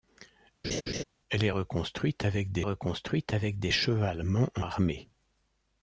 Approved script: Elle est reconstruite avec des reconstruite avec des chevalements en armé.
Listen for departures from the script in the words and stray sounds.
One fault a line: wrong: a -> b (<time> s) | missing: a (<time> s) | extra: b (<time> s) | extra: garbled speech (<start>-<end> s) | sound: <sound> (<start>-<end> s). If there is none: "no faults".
sound: laugh (0.6-1.0 s)